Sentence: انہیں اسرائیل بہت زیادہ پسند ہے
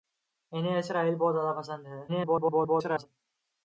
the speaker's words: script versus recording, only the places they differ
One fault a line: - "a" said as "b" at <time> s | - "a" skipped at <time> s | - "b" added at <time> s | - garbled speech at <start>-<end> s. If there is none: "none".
- garbled speech at 2.1-3.1 s